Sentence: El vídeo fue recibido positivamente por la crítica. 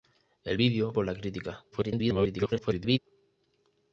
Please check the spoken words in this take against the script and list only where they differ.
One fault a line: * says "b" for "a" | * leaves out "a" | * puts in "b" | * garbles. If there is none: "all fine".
* leaves out "fue recibido positivamente"
* garbles